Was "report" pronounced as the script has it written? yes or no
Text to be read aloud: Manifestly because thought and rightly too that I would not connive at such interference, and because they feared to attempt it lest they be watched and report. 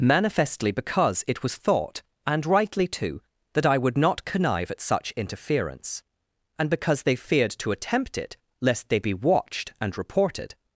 no